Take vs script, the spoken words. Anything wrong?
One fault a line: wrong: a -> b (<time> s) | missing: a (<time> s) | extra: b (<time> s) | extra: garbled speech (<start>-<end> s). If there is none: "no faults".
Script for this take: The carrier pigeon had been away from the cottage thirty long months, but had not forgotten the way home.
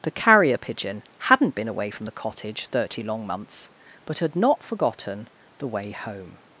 wrong: had -> hadn't (1.2 s)